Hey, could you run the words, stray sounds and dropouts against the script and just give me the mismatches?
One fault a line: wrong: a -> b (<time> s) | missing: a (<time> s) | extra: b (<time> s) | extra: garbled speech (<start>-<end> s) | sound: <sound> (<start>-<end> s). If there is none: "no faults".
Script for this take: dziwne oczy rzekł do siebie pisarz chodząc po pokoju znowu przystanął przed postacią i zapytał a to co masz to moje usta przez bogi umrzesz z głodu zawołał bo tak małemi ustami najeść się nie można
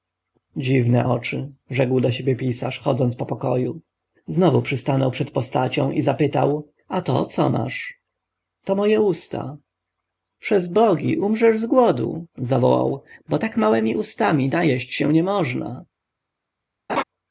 sound: laugh (16.9-17.0 s)